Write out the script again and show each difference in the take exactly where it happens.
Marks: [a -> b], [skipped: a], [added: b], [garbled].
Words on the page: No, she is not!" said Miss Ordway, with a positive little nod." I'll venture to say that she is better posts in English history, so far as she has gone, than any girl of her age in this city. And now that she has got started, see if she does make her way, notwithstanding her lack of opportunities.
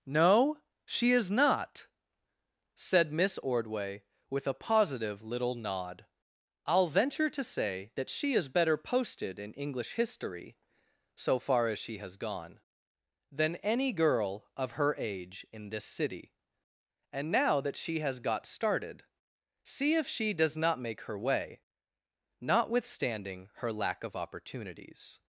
No, she is not!" said Miss Ordway, with a positive little nod." I'll venture to say that she is better [posts -> posted] in English history, so far as she has gone, than any girl of her age in this city. And now that she has got started, see if she does [added: not] make her way, notwithstanding her lack of opportunities.